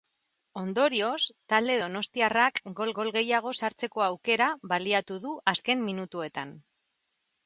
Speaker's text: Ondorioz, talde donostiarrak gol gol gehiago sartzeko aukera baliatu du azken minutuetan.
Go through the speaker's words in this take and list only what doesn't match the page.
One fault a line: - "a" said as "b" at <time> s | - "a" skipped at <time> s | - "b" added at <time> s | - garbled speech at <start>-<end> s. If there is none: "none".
none